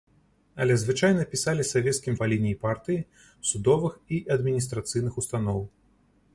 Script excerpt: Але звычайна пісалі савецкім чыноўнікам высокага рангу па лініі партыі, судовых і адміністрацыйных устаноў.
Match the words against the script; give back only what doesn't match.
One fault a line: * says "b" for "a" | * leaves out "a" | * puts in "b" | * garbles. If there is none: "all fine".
* leaves out "чыноўнікам высокага рангу"